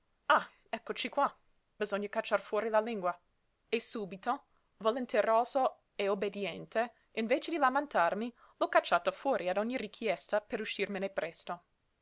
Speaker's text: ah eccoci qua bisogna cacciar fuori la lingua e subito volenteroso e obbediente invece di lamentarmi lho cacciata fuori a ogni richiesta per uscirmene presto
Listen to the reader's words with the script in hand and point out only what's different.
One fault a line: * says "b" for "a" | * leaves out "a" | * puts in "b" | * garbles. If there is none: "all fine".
all fine